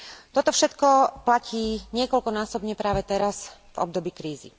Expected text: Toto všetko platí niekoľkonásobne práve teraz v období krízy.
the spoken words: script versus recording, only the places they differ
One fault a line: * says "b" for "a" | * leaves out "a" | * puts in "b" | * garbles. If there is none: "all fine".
all fine